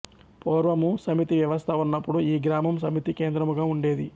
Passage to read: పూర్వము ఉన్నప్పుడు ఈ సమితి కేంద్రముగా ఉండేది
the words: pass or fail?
fail